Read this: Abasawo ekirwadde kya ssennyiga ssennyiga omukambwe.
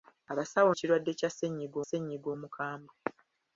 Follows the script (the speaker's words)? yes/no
yes